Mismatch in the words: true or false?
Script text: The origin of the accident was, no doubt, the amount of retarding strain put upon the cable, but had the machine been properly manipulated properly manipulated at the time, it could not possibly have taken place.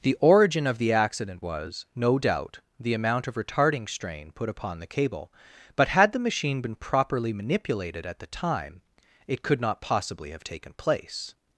true